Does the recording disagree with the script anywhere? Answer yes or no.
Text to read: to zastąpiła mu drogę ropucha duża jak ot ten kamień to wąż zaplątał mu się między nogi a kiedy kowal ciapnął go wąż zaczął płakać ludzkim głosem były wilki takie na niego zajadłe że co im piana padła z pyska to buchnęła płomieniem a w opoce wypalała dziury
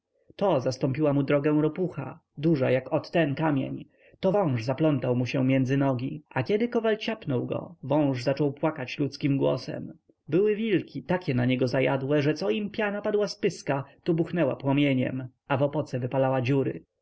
no